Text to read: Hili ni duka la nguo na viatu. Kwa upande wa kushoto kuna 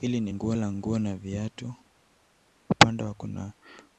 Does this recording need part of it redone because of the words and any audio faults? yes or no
yes